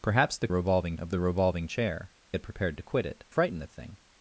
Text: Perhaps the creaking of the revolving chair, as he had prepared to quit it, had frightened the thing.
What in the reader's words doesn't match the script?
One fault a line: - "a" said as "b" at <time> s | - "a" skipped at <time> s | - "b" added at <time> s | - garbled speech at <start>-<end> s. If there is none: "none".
- "creaking" said as "revolving" at 0.5 s
- "as he" skipped at 2.1 s
- "had" skipped at 3.2 s